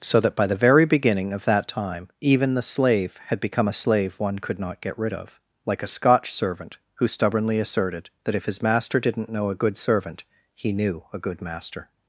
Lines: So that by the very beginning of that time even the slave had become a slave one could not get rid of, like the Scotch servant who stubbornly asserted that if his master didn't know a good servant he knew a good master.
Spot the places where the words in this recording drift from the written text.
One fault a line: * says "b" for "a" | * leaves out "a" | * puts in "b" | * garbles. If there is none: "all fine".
* says "a" for "the"